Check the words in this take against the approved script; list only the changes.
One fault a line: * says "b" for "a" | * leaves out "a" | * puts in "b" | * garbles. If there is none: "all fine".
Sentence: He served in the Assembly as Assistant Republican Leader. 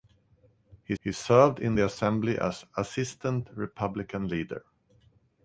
* puts in "he"